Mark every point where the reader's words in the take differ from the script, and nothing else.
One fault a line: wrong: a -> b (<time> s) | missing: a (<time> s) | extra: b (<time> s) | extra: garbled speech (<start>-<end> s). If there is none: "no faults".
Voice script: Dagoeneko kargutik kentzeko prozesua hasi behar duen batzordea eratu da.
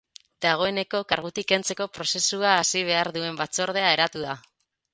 no faults